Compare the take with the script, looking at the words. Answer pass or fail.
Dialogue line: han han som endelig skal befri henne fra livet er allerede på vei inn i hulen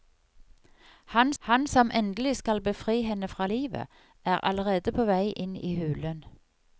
pass